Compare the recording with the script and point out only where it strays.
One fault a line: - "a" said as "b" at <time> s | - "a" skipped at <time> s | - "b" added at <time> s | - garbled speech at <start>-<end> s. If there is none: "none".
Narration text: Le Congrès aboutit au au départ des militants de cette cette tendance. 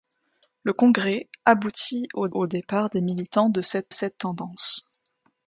none